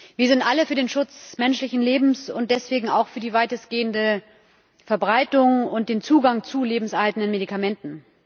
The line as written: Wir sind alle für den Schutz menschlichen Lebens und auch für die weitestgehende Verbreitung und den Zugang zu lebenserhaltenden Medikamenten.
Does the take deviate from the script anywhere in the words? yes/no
yes